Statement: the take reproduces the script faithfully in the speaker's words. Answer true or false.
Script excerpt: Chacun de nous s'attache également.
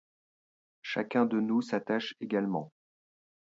true